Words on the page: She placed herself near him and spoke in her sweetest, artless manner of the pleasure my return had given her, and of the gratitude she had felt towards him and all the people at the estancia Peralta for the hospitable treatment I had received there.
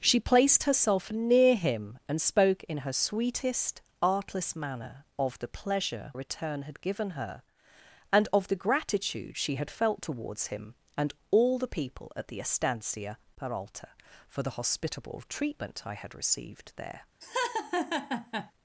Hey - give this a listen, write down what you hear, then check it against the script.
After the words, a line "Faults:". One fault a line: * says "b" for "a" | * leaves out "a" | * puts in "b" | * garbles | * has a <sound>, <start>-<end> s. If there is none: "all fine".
She placed herself near him and spoke in her sweetest, artless manner of the pleasure return had given her, and of the gratitude she had felt towards him and all the people at the estancia Peralta for the hospitable treatment I had received there.
Faults:
* leaves out "my"
* has a laugh, 17.2-18.5 s